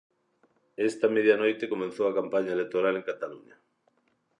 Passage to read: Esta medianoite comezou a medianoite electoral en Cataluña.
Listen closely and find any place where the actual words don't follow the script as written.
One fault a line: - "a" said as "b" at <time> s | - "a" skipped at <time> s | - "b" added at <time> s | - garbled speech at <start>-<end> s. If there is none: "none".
- "medianoite" said as "campaña" at 2.2 s